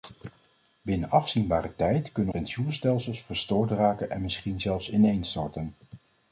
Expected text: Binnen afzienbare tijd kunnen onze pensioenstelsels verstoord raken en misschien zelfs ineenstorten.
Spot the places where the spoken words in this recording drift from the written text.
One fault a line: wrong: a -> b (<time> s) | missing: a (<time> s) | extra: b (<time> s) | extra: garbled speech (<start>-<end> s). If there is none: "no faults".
missing: onze (2.3 s)